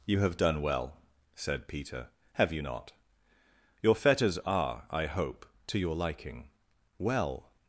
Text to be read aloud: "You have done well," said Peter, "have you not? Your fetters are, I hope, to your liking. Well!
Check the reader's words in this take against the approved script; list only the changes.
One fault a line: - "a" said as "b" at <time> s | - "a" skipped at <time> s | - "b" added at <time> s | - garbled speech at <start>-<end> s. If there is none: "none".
none